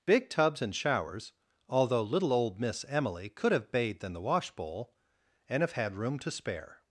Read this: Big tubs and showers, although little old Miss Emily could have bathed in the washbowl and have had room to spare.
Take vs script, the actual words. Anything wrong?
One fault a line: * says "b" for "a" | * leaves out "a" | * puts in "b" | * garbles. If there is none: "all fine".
all fine